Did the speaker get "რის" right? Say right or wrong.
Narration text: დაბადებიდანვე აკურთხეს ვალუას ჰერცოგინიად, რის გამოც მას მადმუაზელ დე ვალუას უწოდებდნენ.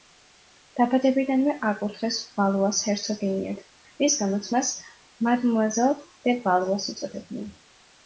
right